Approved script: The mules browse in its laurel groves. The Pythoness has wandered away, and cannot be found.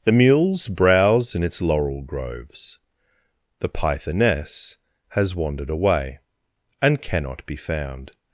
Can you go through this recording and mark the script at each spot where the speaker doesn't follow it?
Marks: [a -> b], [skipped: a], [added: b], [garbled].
The mules browse in its laurel groves. The Pythoness has wandered away, and cannot be found.